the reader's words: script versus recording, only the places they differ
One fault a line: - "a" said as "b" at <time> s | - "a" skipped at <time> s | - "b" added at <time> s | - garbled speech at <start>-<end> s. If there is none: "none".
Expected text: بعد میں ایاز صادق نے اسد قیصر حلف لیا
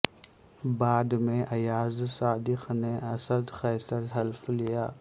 none